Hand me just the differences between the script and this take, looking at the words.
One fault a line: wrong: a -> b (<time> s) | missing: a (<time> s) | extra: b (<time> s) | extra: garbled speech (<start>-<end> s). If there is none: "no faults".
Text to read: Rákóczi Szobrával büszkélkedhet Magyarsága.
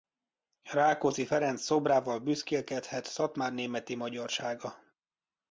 extra: Ferenc (1.2 s)
extra: Szatmárnémeti (3.0 s)